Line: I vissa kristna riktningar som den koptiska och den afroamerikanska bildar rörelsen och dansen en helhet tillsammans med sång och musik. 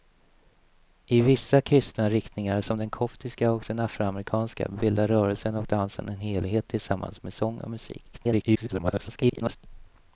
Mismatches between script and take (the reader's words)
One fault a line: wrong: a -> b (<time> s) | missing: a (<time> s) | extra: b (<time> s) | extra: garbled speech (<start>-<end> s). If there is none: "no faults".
extra: garbled speech (8.1-9.6 s)